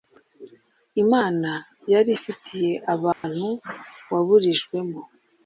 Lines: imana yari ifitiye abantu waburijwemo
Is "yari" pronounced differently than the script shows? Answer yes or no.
no